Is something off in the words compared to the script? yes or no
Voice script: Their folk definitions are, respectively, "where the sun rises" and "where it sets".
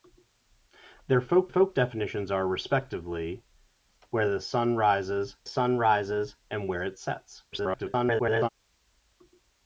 yes